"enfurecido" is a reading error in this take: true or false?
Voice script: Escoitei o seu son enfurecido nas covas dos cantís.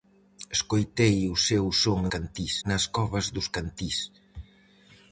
true